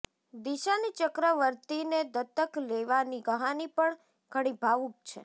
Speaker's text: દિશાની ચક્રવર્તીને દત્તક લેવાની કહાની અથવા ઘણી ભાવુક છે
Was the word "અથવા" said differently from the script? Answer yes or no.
yes